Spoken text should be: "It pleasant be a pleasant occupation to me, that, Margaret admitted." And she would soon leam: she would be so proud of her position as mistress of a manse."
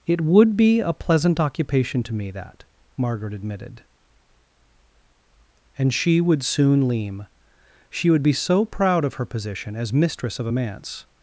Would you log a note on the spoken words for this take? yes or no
yes